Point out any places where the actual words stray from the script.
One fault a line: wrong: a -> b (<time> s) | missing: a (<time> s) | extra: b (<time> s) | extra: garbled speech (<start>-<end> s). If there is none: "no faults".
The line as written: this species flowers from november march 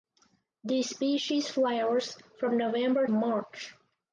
no faults